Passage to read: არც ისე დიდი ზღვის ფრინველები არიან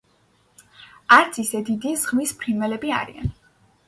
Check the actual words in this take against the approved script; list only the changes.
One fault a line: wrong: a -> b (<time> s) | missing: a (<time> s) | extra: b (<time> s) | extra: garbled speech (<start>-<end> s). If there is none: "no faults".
no faults